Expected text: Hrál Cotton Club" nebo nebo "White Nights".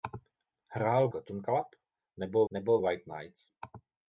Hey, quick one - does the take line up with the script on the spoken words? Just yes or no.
yes